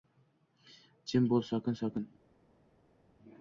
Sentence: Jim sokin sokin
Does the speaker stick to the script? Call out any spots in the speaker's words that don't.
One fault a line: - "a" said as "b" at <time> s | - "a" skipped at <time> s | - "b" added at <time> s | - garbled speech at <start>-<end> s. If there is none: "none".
- "bo‘l" added at 1.4 s